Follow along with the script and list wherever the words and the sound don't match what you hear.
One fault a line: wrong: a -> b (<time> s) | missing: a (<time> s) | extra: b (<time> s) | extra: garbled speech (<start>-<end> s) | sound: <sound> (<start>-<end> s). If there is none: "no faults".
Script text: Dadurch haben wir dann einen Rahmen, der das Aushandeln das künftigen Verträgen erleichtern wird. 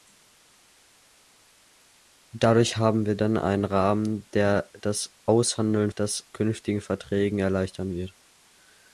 no faults